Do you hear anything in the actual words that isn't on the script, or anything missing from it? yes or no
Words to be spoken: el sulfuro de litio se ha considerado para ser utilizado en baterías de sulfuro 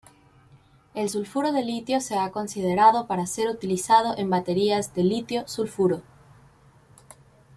yes